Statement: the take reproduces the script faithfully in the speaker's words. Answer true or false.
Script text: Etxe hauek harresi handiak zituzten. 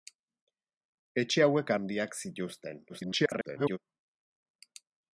false